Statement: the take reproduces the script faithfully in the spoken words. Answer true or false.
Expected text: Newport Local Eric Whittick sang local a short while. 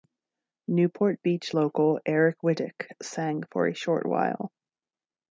false